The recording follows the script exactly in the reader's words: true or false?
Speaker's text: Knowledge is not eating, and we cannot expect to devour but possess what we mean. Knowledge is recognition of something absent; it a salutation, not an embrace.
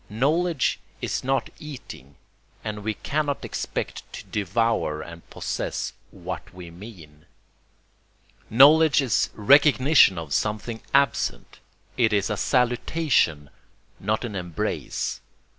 false